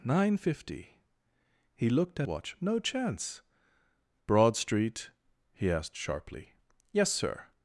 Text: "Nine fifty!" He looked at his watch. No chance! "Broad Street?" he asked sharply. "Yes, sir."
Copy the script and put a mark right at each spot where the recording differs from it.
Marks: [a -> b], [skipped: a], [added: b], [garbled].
"Nine fifty!" He looked at [skipped: his] watch. No chance! "Broad Street?" he asked sharply. "Yes, sir."